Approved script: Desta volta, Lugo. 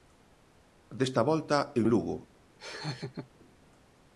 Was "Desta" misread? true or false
false